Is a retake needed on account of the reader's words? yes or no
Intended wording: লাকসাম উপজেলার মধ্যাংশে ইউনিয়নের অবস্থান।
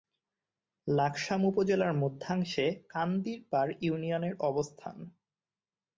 yes